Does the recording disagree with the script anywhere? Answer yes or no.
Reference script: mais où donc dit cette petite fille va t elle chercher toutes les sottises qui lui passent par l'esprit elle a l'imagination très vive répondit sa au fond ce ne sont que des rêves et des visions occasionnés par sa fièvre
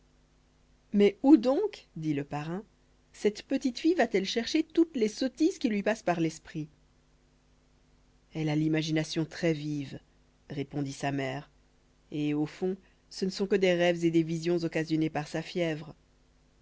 yes